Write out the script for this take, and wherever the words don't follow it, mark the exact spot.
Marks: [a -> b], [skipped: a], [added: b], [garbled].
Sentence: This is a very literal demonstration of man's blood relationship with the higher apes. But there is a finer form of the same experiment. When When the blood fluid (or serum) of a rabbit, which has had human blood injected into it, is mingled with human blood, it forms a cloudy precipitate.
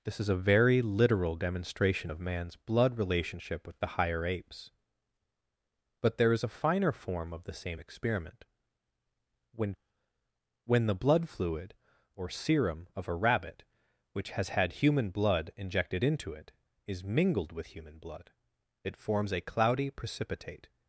This is a very literal demonstration of man's blood relationship with the higher apes. But there is a finer form of the same experiment. When When the blood fluid (or serum) of a rabbit, which has had human blood injected into it, is mingled with human blood, it forms a cloudy precipitate.